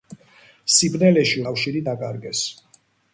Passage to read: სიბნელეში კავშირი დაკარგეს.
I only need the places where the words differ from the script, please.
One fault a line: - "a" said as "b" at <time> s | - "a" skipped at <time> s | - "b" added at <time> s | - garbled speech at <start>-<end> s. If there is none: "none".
none